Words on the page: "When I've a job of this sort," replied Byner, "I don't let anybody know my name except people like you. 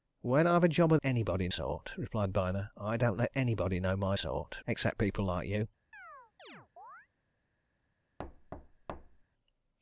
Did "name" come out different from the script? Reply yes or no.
yes